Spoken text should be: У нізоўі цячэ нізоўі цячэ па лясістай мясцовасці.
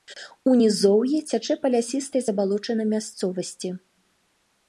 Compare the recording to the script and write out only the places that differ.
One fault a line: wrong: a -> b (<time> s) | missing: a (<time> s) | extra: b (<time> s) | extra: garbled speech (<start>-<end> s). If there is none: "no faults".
missing: нізоўі цячэ (1.5 s)
extra: забалочанай (2.3 s)